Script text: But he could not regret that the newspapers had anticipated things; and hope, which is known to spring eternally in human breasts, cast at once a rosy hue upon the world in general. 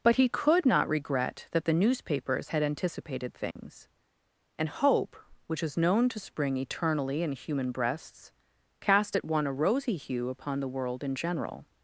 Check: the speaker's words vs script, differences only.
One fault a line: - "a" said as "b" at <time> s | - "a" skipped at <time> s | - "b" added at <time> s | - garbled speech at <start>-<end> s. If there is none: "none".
- "once" said as "one" at 9.2 s